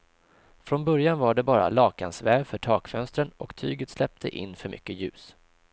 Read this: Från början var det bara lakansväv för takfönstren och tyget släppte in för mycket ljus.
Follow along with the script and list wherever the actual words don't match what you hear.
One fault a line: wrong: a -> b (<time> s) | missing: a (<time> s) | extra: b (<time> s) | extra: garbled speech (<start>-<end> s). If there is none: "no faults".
no faults